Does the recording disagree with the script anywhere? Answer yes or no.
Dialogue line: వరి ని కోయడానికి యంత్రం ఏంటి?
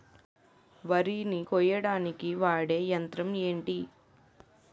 yes